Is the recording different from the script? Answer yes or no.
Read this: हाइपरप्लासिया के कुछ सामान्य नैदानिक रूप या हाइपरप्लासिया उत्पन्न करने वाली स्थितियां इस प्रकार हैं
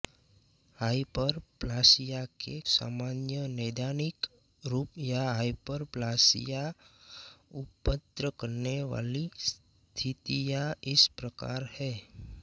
yes